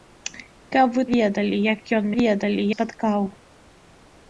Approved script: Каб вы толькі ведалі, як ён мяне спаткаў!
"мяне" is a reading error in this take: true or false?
true